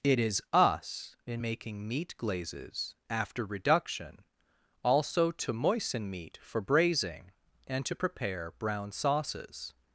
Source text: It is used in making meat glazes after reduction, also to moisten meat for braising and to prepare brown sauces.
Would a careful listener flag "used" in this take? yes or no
yes